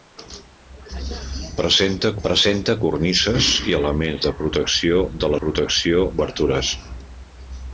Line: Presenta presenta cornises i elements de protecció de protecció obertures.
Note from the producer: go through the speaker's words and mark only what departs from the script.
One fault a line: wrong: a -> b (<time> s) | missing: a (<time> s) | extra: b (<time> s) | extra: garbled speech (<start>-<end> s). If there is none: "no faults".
no faults